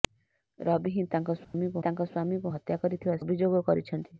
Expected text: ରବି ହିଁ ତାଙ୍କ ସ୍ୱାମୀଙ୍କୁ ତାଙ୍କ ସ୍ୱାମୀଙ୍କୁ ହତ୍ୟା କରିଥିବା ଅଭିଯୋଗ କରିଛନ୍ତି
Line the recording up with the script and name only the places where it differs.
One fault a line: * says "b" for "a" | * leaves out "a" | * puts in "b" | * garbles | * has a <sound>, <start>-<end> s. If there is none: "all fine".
* has a dropout, 1.4-1.5 s